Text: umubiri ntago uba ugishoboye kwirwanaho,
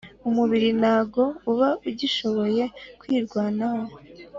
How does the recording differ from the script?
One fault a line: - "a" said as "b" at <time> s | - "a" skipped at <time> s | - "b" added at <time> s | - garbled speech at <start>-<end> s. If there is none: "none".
none